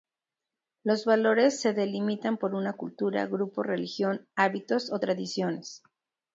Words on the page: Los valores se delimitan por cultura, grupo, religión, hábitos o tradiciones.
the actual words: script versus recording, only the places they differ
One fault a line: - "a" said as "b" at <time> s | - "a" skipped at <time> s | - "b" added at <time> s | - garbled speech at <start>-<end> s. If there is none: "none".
- "una" added at 2.5 s